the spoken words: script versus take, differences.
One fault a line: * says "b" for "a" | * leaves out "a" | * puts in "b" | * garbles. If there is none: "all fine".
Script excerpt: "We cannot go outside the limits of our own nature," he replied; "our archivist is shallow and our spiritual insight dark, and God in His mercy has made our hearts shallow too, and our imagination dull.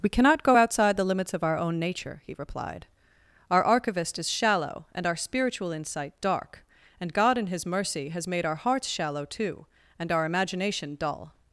all fine